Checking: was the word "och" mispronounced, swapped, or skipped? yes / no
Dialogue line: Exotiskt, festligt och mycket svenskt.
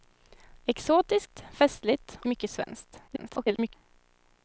yes